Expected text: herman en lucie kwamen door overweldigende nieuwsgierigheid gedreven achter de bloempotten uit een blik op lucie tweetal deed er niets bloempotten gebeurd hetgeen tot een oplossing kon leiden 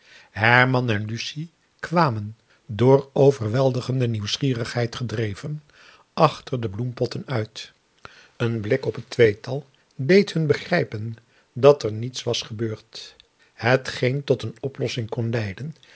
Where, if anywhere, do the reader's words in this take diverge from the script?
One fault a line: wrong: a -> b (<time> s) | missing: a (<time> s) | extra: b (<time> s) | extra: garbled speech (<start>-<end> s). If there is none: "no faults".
wrong: lucie -> het (8.9 s)
extra: hun begrijpen dat (10.3 s)
wrong: bloempotten -> was (12.2 s)